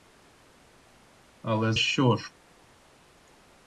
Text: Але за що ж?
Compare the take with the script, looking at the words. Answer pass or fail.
fail